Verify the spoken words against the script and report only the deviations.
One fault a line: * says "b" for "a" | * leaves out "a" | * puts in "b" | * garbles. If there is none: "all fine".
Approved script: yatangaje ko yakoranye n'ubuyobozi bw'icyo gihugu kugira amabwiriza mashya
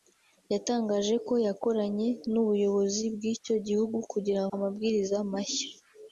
all fine